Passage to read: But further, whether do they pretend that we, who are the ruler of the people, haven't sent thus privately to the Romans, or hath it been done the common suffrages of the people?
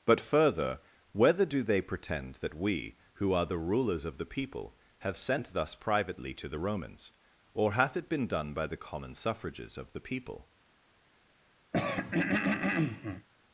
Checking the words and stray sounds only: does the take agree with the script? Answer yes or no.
no